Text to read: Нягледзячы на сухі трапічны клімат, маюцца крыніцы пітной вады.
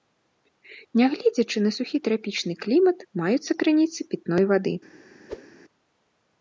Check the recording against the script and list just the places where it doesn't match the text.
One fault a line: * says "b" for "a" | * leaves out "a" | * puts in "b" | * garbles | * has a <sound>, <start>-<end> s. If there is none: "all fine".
* has a whoosh, 5.3-5.5 s